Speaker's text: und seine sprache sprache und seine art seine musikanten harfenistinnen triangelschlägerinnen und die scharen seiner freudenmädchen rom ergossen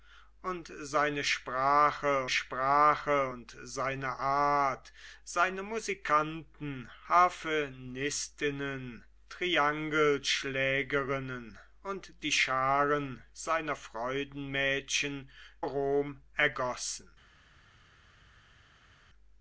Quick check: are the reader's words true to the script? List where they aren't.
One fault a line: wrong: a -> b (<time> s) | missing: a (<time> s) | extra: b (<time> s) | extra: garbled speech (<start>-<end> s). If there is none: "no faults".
no faults